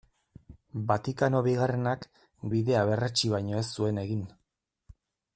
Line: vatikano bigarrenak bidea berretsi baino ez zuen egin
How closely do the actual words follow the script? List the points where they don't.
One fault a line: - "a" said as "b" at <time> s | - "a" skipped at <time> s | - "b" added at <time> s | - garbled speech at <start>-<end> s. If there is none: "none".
none